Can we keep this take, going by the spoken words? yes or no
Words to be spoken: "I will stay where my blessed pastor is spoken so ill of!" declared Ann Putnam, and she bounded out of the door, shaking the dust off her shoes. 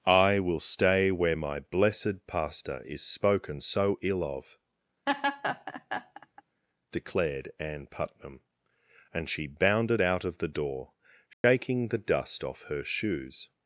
yes